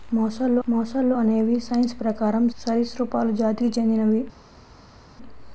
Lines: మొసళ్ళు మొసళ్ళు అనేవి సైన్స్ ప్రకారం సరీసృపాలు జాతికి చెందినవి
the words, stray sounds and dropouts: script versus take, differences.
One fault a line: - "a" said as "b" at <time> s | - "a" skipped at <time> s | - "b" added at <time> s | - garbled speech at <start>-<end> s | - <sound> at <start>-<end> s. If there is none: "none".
none